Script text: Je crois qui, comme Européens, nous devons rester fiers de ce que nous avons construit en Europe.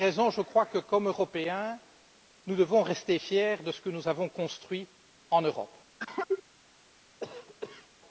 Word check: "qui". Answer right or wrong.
wrong